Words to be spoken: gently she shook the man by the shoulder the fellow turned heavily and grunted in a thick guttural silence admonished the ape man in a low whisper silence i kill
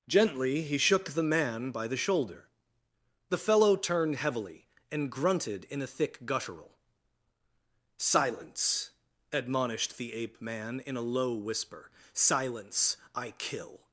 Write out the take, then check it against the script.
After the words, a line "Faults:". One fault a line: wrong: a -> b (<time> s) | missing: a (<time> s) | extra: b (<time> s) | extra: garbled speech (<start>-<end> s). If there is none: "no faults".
gently he shook the man by the shoulder the fellow turned heavily and grunted in a thick guttural silence admonished the ape man in a low whisper silence i kill
Faults:
wrong: she -> he (0.6 s)